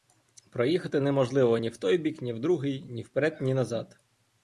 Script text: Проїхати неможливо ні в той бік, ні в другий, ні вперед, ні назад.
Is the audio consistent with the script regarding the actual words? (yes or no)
yes